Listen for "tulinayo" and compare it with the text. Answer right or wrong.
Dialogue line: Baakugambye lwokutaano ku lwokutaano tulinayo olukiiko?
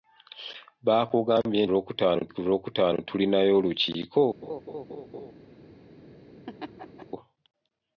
right